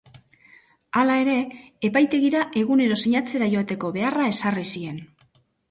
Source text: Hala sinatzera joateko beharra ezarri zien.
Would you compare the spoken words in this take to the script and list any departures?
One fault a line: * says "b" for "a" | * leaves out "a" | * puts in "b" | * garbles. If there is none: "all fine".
* puts in "ere epaitegira egunero"